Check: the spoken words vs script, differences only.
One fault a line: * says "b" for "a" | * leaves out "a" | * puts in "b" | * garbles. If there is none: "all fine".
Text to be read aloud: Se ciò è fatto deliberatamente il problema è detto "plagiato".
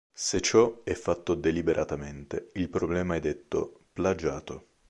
all fine